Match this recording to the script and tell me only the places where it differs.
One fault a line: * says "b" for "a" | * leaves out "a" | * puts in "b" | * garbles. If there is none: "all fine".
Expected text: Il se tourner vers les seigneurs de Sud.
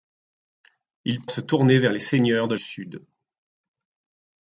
all fine